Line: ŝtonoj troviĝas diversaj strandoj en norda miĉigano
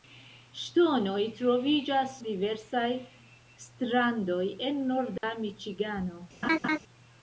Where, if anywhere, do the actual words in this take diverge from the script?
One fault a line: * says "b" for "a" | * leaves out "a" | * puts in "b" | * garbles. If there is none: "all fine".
all fine